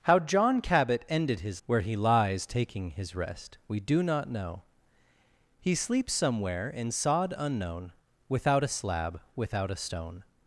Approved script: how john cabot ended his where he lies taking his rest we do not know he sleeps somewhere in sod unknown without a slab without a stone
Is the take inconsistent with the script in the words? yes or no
no